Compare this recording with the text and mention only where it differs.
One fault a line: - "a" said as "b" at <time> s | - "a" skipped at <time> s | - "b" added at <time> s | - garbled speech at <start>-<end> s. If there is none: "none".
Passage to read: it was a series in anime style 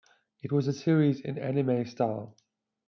none